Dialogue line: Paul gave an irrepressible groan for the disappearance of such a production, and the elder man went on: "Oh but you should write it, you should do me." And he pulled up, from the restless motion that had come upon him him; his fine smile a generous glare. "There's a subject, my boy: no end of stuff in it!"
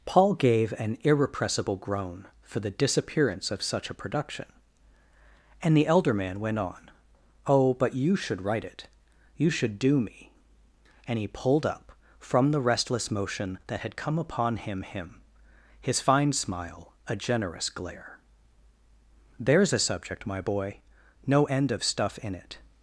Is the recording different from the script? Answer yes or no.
no